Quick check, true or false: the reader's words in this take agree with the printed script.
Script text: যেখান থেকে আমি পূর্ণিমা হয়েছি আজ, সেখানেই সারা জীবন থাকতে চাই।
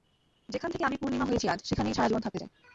true